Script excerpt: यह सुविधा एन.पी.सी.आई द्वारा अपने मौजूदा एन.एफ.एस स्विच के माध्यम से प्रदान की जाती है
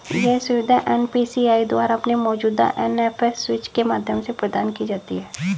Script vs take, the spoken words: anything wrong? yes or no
no